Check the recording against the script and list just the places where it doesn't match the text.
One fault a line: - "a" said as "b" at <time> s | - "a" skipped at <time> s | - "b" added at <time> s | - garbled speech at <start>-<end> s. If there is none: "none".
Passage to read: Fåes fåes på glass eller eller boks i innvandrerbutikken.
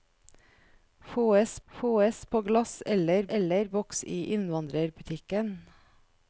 none